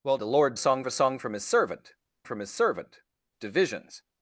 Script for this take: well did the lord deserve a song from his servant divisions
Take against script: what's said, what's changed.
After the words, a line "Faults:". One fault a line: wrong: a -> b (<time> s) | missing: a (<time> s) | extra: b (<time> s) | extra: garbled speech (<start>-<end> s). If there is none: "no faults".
well the lord song a song from his servant from his servant divisions
Faults:
missing: did (0.2 s)
wrong: deserve -> song (0.6 s)
extra: from his servant (2.2 s)